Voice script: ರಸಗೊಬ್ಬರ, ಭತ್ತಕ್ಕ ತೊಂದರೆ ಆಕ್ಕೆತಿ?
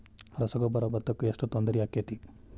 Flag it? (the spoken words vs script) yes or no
yes